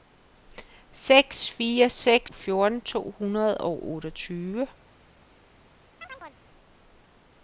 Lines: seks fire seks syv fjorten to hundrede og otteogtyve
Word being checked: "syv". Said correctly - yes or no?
no